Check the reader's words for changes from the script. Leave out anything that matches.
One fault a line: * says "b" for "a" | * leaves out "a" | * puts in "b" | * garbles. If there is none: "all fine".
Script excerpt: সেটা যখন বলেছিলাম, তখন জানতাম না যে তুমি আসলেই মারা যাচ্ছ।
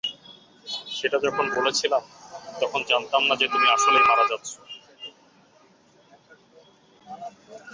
all fine